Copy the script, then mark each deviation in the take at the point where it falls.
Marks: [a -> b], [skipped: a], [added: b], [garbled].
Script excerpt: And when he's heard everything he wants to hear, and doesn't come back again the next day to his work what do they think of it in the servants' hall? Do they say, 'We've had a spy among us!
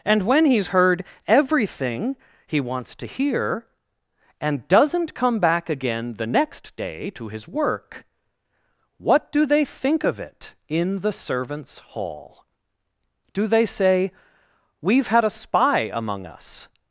And when he's heard everything he wants to hear, and doesn't come back again the next day to his work what do they think of it in the servants' hall? Do they say, 'We've had a spy among us!